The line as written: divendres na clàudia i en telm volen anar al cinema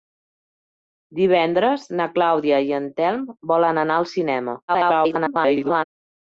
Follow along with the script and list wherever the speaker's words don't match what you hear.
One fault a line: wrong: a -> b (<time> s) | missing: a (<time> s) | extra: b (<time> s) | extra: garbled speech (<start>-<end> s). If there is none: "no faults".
extra: garbled speech (4.7-5.8 s)